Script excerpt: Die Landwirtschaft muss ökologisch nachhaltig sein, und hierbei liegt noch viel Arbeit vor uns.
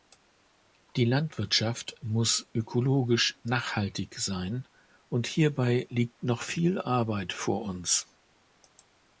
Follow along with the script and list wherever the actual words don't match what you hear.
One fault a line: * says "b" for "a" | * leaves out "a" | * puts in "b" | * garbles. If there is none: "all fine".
all fine